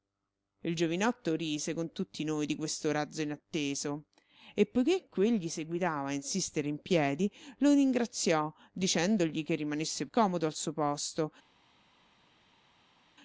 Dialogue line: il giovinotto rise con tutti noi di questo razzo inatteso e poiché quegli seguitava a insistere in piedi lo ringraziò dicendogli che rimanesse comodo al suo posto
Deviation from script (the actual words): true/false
false